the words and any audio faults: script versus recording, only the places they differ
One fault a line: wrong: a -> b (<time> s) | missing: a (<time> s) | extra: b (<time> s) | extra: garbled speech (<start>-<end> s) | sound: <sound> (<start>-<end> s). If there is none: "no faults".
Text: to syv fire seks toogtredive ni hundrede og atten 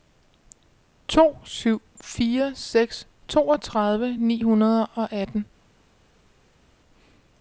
no faults